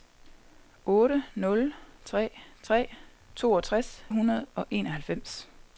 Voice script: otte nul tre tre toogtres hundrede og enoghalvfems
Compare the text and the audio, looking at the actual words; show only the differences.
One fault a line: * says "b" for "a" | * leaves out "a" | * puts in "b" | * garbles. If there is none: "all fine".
all fine